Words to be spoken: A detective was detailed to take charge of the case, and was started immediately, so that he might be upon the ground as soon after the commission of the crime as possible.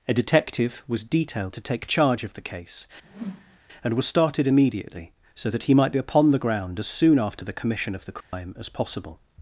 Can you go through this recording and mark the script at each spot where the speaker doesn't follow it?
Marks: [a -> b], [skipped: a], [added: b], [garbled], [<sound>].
A detective was detailed to take charge of the case, [whoosh] and was started immediately, so that he might be upon the ground as soon after the commission of the crime [dropout] as possible.